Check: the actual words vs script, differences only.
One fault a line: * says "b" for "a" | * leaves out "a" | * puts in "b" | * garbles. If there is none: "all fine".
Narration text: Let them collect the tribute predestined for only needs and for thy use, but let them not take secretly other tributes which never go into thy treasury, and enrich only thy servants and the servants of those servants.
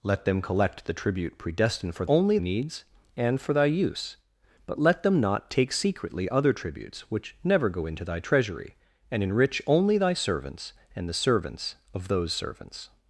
all fine